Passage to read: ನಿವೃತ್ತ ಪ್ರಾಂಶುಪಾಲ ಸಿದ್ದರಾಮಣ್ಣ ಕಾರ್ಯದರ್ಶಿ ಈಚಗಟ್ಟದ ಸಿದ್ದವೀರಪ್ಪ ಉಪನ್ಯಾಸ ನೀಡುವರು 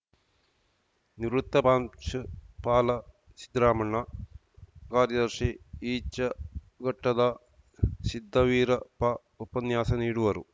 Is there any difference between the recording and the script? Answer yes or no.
no